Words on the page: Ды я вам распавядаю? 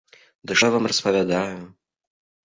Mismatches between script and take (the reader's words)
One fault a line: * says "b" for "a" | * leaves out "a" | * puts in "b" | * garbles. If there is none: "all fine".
all fine